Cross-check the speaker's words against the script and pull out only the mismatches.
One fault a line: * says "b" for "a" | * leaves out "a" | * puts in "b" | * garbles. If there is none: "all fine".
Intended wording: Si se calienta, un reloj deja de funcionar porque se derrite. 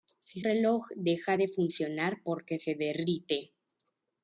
* leaves out "se calienta un"